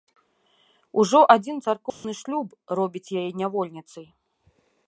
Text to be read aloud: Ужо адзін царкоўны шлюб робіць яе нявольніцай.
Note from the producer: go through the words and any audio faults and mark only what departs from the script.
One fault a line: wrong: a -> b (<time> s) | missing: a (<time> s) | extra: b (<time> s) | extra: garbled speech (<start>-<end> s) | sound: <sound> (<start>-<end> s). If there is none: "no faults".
sound: dropout (1.9-2.0 s)